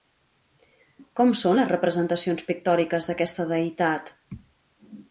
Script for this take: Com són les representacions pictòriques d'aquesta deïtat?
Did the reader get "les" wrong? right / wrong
right